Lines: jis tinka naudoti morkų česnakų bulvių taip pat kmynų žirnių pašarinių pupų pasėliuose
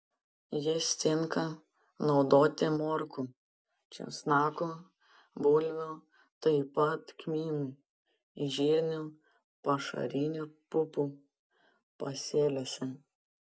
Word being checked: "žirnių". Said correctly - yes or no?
yes